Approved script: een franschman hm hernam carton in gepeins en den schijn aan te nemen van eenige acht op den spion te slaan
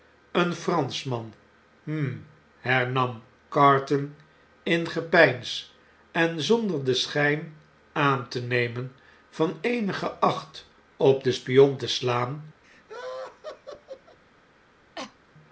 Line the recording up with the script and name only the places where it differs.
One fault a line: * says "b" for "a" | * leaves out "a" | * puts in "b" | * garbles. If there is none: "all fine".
* puts in "zonder"